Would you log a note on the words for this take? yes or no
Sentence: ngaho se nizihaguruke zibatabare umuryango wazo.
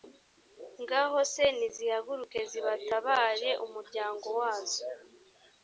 no